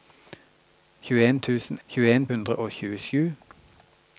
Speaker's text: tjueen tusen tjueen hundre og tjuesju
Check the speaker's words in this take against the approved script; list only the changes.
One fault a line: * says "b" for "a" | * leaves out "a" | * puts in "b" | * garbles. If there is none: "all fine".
all fine